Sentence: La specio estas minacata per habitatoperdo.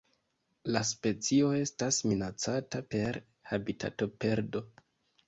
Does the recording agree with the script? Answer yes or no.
yes